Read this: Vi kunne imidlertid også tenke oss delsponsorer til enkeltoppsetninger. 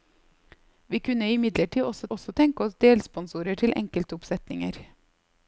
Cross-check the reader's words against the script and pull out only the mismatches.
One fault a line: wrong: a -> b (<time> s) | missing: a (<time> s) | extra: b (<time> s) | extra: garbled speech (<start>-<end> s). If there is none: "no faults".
extra: også (2.1 s)